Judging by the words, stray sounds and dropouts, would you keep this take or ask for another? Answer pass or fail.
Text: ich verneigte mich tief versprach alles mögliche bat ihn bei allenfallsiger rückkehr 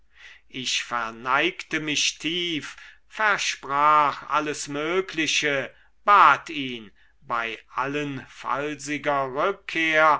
pass